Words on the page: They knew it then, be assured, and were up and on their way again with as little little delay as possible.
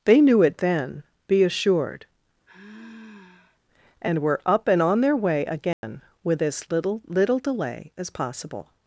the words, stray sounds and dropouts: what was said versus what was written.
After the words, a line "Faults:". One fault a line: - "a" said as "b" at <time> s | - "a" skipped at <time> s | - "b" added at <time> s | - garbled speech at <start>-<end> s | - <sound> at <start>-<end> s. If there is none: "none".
They knew it then, be assured, and were up and on their way again with as little little delay as possible.
Faults:
- sigh at 2.5-3.6 s
- dropout at 5.7-5.8 s